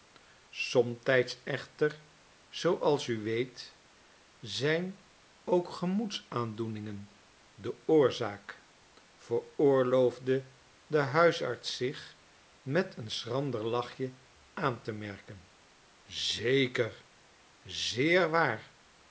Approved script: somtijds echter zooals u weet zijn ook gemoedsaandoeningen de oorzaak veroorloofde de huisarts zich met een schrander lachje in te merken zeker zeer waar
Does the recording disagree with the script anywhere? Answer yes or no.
yes